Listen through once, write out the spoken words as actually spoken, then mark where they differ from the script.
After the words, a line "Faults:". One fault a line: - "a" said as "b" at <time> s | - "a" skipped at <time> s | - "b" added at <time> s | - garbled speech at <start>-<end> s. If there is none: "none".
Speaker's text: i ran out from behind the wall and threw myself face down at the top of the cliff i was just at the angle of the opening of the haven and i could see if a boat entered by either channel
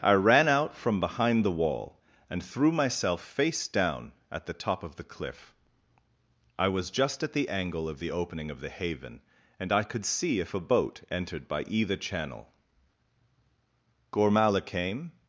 i ran out from behind the wall and threw myself face down at the top of the cliff i was just at the angle of the opening of the haven and i could see if a boat entered by either channel gormala came
Faults:
- "gormala came" added at 14.1 s